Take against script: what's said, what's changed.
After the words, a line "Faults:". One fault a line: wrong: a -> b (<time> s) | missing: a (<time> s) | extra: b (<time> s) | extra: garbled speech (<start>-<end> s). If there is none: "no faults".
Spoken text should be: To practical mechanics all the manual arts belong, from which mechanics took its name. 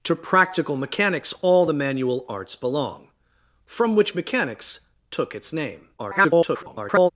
To practical mechanics all the manual arts belong, from which mechanics took its name. [garbled]
Faults:
extra: garbled speech (6.0-7.1 s)